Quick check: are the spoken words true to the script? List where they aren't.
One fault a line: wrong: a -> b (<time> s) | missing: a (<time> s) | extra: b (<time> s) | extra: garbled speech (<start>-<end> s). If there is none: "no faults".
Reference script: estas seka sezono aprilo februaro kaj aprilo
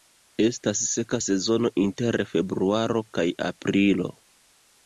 wrong: aprilo -> inter (1.9 s)